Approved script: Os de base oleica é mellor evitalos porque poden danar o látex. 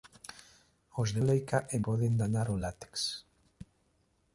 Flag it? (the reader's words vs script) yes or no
yes